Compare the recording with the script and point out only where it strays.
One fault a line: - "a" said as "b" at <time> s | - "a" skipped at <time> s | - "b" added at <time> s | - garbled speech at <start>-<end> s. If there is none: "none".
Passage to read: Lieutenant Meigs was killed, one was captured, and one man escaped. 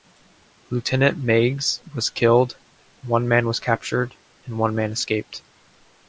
- "man" added at 3.3 s